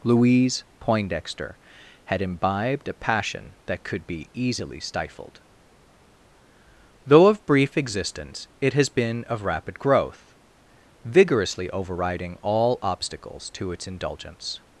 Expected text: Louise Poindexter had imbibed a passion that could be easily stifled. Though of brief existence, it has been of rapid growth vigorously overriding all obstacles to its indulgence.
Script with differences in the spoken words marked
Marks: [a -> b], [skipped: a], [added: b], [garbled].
Louise Poindexter had imbibed a passion that could be easily stifled. Though of brief existence, it has been of rapid growth vigorously overriding all obstacles to its indulgence.